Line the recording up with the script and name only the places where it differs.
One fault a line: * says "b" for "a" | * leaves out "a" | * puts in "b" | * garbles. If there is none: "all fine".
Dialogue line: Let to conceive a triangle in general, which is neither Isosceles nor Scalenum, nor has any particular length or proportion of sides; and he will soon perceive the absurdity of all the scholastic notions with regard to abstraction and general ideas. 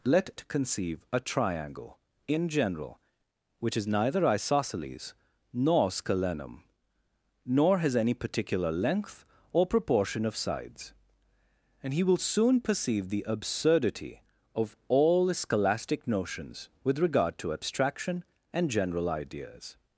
all fine